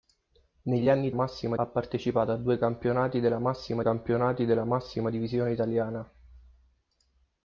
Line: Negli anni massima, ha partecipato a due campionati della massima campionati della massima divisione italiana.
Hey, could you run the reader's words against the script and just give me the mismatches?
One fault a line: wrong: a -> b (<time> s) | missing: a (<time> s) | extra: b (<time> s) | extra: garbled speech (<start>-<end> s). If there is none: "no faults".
no faults